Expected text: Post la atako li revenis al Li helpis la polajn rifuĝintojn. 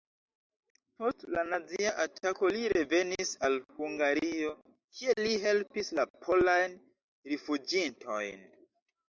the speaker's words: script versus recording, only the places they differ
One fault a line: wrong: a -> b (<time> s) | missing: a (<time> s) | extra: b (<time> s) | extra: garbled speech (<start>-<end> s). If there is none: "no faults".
extra: nazia (1.5 s)
extra: Hungario kie (3.8 s)